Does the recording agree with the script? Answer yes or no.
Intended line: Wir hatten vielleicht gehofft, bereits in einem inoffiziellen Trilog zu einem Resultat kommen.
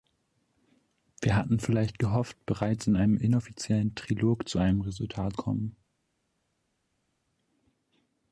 yes